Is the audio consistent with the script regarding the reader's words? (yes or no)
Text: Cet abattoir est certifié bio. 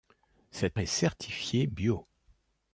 no